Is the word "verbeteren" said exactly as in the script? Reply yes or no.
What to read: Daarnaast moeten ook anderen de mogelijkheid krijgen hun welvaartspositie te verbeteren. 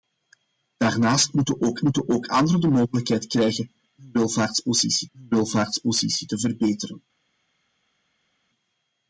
yes